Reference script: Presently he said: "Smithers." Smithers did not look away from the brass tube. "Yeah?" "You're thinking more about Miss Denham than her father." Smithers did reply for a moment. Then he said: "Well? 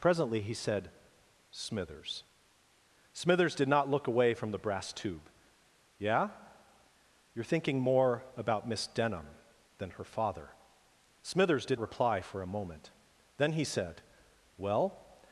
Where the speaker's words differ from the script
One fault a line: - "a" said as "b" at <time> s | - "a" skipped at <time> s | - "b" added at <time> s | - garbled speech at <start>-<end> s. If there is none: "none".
none